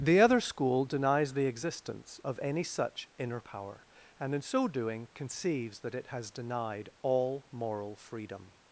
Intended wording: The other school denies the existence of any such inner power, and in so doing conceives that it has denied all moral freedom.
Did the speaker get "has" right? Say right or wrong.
right